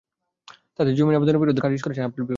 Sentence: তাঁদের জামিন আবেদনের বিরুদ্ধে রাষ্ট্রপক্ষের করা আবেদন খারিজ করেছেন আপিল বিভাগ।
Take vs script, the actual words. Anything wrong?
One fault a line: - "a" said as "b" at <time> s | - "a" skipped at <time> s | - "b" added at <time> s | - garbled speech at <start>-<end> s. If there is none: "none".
- "রাষ্ট্রপক্ষের করা আবেদন" skipped at 1.6 s